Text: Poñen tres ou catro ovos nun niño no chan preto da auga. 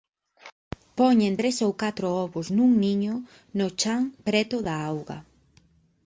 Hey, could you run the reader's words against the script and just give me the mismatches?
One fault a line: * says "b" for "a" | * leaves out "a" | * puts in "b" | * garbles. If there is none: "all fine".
all fine